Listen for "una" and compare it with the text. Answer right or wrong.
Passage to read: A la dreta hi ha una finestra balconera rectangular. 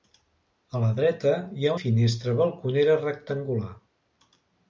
wrong